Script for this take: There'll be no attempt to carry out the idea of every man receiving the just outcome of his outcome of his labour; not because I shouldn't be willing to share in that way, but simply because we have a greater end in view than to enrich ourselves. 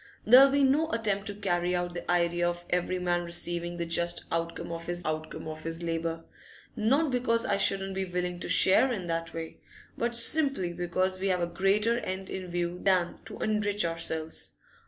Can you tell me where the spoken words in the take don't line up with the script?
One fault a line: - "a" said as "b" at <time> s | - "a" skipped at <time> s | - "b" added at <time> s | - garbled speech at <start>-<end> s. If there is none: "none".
none